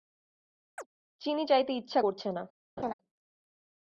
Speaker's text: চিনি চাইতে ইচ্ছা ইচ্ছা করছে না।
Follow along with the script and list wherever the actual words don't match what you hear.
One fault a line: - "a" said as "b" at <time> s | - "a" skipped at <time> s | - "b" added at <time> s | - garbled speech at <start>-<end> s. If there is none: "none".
- "ইচ্ছা" skipped at 2.0 s